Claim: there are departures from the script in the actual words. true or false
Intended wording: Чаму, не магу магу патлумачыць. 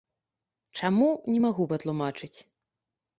true